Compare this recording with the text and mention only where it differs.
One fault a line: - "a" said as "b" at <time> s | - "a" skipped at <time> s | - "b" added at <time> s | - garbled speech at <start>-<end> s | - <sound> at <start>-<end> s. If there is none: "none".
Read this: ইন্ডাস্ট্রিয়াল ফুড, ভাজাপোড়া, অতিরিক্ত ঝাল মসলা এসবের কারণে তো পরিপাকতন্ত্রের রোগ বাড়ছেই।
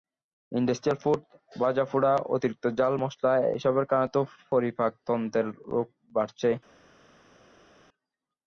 none